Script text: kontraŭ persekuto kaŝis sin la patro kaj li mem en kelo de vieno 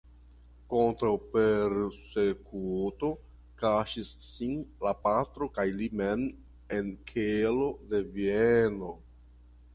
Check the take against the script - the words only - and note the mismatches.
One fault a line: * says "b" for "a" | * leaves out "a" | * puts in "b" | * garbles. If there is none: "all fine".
all fine